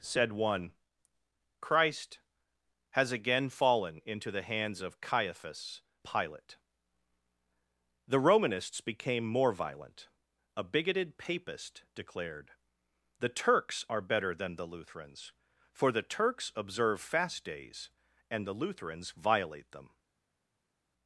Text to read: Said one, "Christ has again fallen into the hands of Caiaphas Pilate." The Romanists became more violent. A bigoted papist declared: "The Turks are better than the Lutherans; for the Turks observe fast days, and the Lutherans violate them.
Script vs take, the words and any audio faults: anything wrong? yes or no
no